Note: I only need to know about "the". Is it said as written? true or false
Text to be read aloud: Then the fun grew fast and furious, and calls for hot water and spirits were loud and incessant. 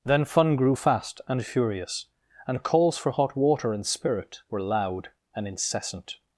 false